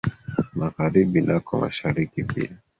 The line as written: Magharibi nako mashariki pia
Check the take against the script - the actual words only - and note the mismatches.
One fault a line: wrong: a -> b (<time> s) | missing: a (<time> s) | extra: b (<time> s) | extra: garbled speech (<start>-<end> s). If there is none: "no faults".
no faults